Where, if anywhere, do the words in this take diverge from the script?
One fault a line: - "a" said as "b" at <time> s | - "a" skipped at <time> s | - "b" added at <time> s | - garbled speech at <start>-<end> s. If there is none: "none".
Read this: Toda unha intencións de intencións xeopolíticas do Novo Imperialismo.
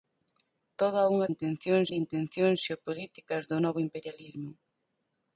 none